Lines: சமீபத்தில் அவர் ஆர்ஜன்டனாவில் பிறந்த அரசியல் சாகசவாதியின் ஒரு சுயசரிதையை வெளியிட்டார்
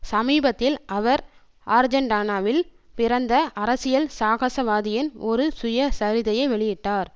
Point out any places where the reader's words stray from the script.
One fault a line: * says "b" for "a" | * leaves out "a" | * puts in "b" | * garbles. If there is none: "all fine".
all fine